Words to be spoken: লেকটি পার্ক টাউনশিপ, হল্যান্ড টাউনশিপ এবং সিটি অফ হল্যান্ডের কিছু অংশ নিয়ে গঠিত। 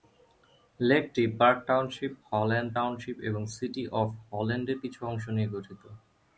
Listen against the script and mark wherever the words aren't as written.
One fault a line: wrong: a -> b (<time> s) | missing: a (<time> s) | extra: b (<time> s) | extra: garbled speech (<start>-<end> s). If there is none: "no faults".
no faults